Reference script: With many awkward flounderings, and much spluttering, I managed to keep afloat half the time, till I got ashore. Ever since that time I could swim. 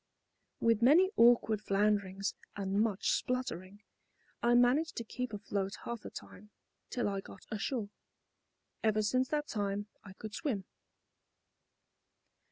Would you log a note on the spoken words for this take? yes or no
no